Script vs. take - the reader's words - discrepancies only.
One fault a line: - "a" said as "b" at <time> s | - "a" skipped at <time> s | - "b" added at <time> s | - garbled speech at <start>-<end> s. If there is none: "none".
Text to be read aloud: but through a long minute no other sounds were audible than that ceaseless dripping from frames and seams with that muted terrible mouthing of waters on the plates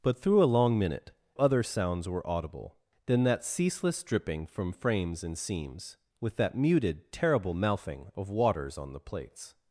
- "no" skipped at 1.1 s